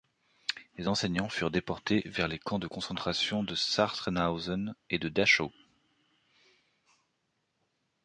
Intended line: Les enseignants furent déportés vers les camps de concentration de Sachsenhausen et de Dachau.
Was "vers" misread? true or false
false